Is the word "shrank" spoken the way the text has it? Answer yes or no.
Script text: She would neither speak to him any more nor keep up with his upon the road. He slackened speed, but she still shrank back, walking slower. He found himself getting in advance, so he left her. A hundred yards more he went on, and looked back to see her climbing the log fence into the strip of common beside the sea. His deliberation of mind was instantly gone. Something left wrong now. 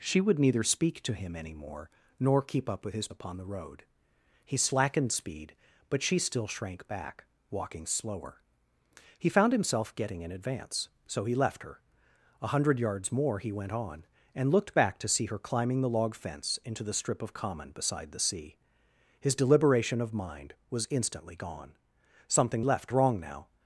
yes